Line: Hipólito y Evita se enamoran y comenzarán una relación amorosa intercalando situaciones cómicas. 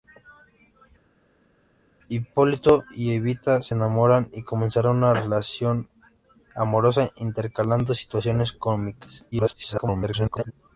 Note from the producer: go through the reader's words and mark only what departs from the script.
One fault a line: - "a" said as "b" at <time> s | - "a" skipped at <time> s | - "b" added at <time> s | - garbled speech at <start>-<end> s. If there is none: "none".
- garbled speech at 9.3-10.5 s